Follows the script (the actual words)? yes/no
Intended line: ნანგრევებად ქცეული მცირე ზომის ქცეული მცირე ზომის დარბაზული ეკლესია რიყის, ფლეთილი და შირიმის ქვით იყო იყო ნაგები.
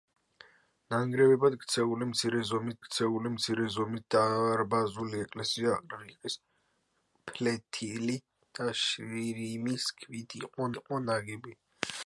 yes